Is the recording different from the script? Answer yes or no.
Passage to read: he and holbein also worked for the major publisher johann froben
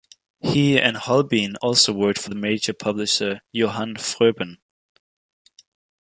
no